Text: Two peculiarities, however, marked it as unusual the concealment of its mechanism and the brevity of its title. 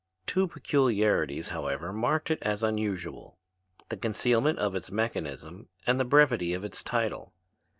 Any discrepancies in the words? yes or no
no